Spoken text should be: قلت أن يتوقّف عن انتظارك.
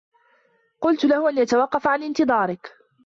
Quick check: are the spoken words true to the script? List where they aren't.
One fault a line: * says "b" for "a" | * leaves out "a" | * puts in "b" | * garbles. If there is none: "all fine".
* puts in "له"